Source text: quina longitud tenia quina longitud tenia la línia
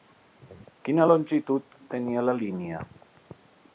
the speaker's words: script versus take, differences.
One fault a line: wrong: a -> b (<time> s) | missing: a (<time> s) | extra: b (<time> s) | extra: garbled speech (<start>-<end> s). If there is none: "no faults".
missing: quina longitud tenia (2.3 s)